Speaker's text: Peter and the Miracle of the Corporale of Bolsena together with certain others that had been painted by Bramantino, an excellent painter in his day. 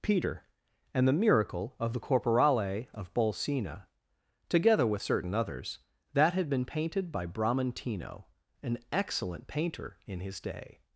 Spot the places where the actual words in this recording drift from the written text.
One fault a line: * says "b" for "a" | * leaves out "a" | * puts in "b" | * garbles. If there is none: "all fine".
all fine